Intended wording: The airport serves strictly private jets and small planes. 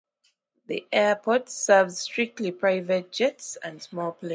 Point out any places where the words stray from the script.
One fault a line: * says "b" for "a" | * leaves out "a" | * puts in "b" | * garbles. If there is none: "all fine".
all fine